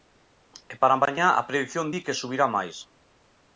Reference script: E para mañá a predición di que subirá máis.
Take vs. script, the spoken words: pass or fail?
pass